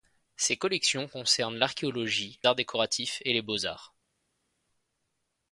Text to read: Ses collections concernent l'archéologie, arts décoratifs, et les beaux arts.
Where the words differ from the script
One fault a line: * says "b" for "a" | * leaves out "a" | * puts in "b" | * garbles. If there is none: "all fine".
all fine